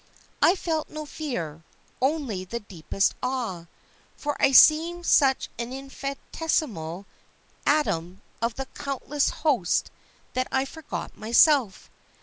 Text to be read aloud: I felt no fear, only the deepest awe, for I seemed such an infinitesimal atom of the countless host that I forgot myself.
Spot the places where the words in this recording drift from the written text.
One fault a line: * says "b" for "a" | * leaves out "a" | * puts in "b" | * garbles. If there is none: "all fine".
all fine